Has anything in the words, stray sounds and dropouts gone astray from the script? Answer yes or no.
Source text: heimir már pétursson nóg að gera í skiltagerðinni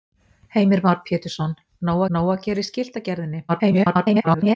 yes